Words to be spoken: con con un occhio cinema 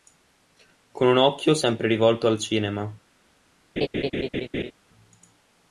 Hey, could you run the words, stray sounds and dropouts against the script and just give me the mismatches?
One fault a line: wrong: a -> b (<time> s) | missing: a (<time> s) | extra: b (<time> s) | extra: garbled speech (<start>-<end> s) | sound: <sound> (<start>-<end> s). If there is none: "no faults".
missing: con (1.1 s)
extra: sempre rivolto al (1.5 s)
sound: laugh (3.8-4.7 s)